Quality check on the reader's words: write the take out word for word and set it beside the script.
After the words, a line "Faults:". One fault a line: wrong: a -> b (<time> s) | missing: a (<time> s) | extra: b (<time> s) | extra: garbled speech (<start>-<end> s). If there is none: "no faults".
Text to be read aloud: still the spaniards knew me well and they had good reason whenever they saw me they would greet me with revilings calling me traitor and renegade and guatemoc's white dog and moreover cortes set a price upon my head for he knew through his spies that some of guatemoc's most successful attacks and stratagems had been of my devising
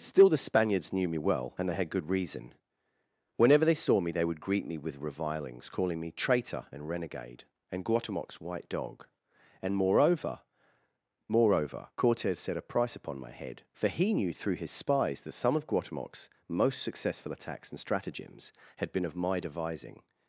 still the spaniards knew me well and they had good reason whenever they saw me they would greet me with revilings calling me traitor and renegade and guatemoc's white dog and moreover moreover cortes set a price upon my head for he knew through his spies that some of guatemoc's most successful attacks and stratagems had been of my devising
Faults:
extra: moreover (11.3 s)